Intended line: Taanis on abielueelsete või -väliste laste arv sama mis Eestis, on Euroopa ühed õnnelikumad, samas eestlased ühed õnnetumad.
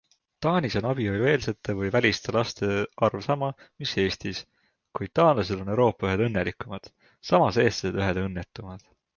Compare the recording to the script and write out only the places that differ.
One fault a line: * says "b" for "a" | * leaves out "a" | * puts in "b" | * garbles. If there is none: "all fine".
* puts in "kuid taanlased"